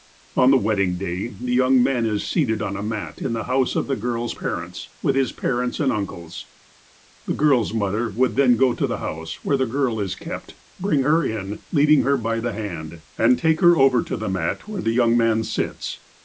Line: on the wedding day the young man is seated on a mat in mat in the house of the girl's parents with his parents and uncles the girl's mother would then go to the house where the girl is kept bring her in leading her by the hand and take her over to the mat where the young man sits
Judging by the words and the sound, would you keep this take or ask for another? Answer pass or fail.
fail